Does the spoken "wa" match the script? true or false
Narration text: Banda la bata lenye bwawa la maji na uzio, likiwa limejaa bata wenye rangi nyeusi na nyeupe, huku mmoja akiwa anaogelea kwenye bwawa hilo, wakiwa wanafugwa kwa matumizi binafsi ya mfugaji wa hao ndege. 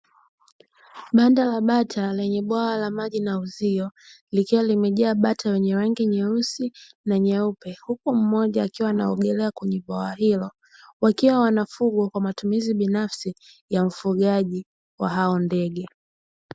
true